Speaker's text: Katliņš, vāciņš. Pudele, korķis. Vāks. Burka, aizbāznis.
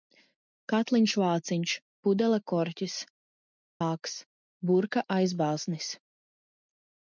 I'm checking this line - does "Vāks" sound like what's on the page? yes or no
yes